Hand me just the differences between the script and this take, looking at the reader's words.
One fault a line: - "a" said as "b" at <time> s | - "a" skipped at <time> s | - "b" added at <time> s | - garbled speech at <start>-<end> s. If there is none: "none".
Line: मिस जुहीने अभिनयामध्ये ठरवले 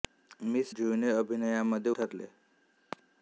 none